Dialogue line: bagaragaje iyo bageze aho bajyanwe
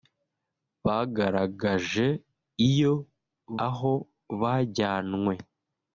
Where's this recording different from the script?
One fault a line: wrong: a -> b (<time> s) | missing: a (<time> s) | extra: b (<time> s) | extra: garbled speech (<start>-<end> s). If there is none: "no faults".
missing: bageze (2.9 s)